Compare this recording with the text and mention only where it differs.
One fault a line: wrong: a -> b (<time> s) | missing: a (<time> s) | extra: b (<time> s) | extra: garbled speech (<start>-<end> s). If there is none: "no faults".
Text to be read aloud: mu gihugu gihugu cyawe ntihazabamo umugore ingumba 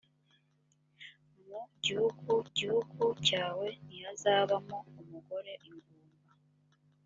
no faults